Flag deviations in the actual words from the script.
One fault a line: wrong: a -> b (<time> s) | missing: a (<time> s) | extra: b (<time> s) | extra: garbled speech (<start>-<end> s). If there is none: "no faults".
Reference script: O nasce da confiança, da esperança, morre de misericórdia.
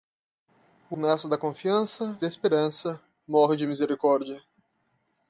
no faults